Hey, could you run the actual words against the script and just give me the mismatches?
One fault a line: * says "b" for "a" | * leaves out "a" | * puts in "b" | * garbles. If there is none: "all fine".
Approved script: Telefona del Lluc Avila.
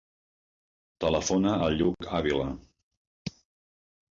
* says "al" for "del"